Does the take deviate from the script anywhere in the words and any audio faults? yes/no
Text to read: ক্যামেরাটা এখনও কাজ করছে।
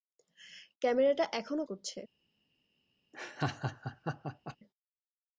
yes